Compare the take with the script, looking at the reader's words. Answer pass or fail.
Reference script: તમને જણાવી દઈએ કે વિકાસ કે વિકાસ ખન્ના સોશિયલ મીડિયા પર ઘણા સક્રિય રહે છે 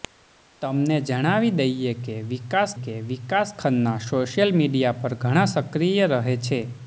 pass